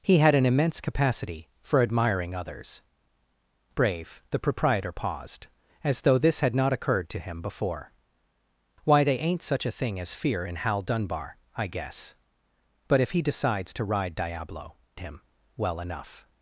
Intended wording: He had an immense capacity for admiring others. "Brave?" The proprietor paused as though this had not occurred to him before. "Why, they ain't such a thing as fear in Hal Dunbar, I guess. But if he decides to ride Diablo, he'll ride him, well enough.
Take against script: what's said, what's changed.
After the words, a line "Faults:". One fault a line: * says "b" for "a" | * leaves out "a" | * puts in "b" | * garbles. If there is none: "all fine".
He had an immense capacity for admiring others. "Brave?" The proprietor paused as though this had not occurred to him before. "Why, they ain't such a thing as fear in Hal Dunbar, I guess. But if he decides to ride Diablo, him, well enough.
Faults:
* leaves out "he'll ride"